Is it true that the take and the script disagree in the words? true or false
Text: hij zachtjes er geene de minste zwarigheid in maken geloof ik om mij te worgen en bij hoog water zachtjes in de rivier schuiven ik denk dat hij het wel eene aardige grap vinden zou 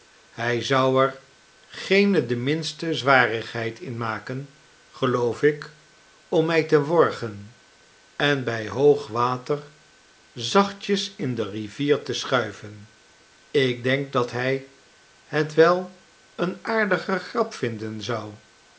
true